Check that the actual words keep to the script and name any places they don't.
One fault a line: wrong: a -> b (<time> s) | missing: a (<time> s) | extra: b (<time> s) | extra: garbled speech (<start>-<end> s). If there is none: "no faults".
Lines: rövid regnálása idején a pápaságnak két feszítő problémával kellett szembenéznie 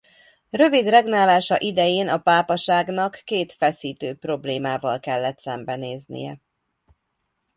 no faults